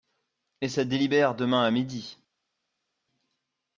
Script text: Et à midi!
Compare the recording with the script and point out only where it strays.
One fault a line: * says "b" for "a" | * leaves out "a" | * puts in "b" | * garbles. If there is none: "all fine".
* puts in "ça délibère demain"